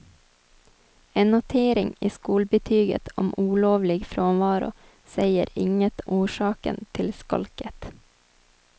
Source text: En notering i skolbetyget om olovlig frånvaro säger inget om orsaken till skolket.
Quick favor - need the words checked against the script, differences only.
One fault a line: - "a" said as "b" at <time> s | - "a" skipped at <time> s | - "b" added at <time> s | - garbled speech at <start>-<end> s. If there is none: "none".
- "om" skipped at 6.0 s